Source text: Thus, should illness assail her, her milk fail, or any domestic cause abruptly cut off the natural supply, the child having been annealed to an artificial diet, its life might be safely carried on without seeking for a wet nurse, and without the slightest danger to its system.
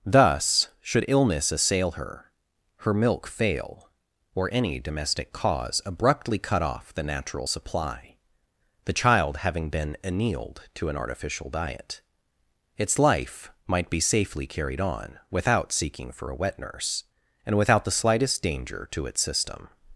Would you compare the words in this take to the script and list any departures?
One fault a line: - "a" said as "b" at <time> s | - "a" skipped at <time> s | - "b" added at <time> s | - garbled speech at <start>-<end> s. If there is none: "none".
none